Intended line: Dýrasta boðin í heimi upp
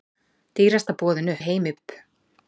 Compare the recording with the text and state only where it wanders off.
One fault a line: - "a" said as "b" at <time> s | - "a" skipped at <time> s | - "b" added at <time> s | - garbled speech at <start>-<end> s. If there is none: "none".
none